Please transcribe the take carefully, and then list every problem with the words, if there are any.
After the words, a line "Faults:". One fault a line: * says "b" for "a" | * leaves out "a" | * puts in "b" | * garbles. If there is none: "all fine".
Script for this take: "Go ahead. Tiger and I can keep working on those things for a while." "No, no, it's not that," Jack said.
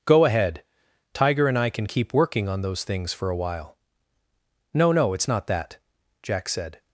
"Go ahead. Tiger and I can keep working on those things for a while." "No, no, it's not that," Jack said.
Faults:
all fine